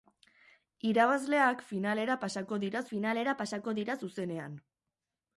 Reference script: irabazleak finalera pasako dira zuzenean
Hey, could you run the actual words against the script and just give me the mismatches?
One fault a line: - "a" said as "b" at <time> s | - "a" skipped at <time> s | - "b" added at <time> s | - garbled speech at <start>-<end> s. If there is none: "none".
- "finalera pasako dira" added at 2.9 s